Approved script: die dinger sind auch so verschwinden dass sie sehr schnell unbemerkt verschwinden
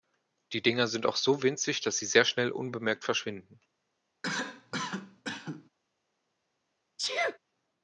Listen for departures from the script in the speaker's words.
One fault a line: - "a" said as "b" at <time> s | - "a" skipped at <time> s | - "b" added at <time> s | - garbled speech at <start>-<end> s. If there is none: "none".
- "verschwinden" said as "winzig" at 1.4 s